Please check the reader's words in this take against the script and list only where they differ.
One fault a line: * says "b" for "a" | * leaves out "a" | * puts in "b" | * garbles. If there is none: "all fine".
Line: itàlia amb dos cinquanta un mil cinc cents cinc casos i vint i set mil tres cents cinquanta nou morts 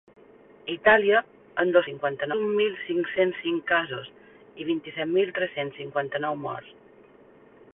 all fine